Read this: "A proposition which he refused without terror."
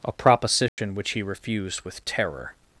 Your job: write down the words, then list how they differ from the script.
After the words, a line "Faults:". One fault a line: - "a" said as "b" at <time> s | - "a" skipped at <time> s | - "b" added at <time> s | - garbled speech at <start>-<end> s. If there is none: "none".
"A proposition which he refused with terror."
Faults:
- "without" said as "with" at 1.8 s